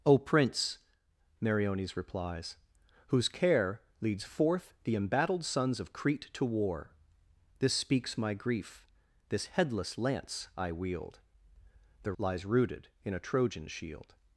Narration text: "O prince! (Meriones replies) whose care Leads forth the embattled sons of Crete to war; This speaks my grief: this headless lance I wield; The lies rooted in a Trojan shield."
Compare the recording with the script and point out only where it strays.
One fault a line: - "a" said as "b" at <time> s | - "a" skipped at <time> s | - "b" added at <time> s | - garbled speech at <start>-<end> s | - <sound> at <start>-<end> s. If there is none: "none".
none